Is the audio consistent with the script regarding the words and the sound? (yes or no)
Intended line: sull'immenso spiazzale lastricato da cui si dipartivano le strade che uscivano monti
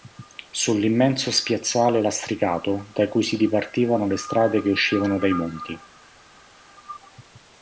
no